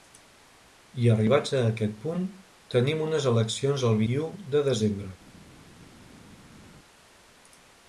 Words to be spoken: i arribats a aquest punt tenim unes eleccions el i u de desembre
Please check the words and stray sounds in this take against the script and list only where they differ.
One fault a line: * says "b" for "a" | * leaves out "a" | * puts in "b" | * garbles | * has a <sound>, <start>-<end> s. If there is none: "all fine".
all fine